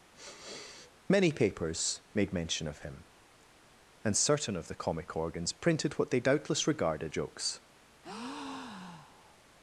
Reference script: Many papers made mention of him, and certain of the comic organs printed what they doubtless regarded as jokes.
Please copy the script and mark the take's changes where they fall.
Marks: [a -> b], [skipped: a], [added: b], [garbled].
Many papers made mention of him, and certain of the comic organs printed what they doubtless regarded [skipped: as] jokes.